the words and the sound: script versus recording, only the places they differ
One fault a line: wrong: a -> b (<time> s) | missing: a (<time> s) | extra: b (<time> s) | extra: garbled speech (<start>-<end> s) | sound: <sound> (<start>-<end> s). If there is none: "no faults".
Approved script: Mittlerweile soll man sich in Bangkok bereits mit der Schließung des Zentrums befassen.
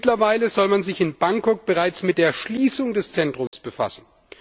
sound: dropout (3.5-3.5 s)